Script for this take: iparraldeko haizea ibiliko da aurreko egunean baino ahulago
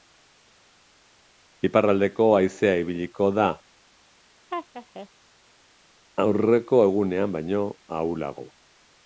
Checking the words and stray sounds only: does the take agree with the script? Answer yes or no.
no